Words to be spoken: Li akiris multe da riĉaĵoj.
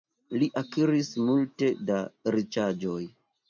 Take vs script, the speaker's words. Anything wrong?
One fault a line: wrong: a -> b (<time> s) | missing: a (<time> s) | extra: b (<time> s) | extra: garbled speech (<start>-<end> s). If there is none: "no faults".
no faults